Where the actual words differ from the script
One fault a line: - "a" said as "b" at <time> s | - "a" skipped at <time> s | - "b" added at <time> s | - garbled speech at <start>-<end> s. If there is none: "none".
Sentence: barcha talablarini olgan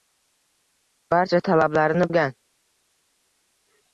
none